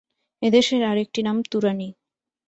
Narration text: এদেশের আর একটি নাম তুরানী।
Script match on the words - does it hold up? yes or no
yes